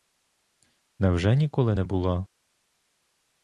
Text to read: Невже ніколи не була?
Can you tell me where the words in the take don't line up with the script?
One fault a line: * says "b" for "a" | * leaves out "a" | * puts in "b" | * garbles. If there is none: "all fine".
all fine